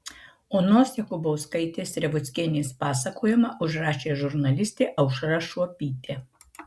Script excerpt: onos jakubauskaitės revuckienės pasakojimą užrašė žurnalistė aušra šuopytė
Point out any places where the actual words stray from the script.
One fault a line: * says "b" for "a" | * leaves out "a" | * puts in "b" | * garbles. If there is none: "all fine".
all fine